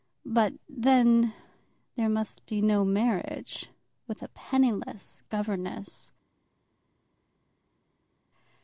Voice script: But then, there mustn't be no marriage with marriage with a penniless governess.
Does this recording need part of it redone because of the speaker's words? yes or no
yes